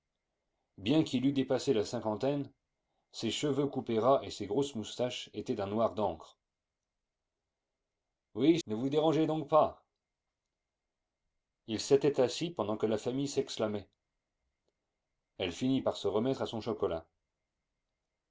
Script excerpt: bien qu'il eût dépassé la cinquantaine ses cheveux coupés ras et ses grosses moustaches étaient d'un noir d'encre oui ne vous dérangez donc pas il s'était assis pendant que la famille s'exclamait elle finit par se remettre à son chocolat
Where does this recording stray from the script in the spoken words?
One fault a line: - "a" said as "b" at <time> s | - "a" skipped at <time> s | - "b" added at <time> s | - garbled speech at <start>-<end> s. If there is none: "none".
none